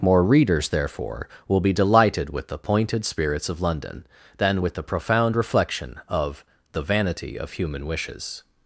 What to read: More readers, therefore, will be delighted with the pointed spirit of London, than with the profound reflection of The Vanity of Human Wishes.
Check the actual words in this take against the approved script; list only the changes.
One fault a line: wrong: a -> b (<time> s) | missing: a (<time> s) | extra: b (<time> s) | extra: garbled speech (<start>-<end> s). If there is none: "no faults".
wrong: spirit -> spirits (3.0 s)